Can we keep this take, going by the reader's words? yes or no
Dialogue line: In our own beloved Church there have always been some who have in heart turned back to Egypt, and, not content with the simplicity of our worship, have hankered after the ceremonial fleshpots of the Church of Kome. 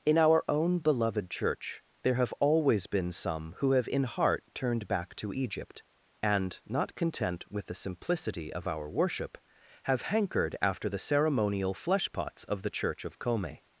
yes